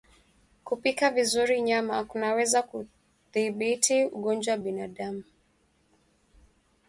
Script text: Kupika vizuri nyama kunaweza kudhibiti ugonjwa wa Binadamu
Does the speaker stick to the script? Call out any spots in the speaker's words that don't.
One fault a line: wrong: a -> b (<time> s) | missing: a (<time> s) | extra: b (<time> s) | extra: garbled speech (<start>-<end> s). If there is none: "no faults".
no faults